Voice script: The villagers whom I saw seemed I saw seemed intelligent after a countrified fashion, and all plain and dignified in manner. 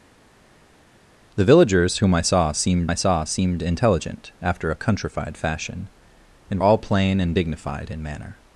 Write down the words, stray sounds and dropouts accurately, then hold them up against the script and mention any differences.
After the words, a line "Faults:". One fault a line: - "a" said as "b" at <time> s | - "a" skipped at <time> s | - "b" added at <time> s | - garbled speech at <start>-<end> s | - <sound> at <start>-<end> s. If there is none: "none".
The villagers whom I saw seemed I saw seemed intelligent after a countrified fashion, and all plain and dignified in manner.
Faults:
none